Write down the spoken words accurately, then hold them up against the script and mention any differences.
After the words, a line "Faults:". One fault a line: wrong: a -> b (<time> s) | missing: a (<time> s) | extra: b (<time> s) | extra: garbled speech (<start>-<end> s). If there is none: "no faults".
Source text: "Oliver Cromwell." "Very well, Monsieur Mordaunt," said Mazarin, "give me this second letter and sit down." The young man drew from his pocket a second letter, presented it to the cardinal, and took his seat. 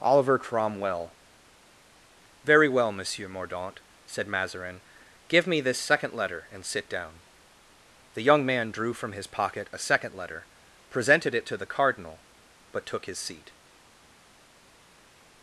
"Oliver Cromwell." "Very well, Monsieur Mordaunt," said Mazarin, "give me this second letter and sit down." The young man drew from his pocket a second letter, presented it to the cardinal, but took his seat.
Faults:
wrong: and -> but (12.7 s)